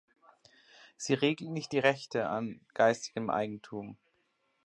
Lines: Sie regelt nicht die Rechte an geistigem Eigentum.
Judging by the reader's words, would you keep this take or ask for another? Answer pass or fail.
pass